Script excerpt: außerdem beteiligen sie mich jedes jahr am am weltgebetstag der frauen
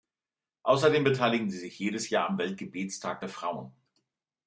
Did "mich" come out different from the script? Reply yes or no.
yes